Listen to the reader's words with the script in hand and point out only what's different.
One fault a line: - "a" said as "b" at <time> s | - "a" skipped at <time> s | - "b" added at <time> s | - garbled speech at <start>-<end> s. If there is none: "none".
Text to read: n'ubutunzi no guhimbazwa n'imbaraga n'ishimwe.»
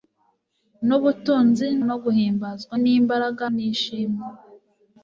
none